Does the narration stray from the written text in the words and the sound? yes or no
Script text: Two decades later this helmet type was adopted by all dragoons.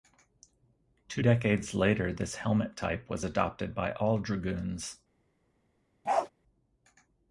yes